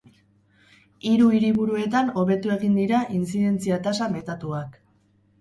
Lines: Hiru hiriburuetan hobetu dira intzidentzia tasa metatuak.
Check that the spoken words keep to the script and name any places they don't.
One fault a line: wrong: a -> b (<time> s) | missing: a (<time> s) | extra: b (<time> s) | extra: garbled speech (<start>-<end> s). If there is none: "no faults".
extra: egin (2.6 s)